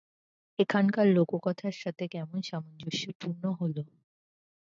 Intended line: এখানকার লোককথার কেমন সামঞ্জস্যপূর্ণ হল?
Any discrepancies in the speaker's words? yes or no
yes